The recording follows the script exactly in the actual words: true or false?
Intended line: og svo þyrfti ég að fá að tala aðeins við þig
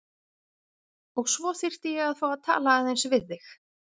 true